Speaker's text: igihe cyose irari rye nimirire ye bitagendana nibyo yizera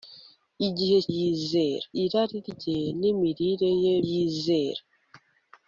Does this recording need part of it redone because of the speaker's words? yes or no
yes